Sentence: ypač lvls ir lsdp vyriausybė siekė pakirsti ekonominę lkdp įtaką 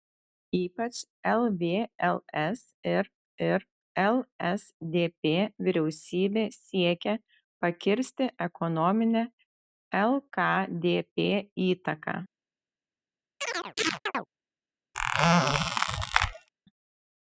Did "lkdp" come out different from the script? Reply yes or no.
no